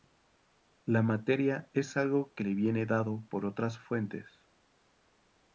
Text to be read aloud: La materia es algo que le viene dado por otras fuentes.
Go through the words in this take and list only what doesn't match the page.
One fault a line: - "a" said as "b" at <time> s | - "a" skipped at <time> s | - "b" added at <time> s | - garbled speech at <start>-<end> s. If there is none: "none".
none